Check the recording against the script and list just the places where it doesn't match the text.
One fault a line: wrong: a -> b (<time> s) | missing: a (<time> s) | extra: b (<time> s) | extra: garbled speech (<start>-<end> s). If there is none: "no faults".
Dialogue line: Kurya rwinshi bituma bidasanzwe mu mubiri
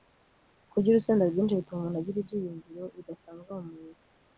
extra: urusenda (0.9 s)
extra: umuntu agira ibyiyumviro (1.8 s)